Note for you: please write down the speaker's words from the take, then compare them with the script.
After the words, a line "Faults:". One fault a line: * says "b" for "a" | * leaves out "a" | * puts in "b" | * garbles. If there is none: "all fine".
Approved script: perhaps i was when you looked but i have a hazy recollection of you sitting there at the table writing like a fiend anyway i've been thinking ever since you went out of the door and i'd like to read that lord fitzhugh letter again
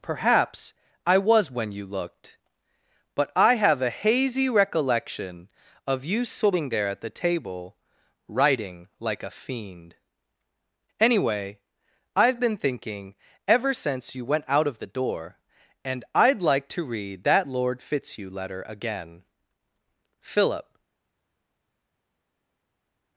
perhaps i was when you looked but i have a hazy recollection of you sitting there at the table writing like a fiend anyway i've been thinking ever since you went out of the door and i'd like to read that lord fitzhugh letter again philip
Faults:
* puts in "philip"